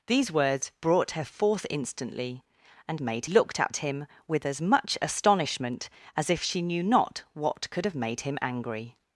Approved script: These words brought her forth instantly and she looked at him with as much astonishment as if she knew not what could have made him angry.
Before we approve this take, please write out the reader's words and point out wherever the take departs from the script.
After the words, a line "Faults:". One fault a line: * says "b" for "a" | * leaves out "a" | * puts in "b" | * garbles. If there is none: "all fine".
These words brought her forth instantly and made looked at him with as much astonishment as if she knew not what could have made him angry.
Faults:
* says "made" for "she"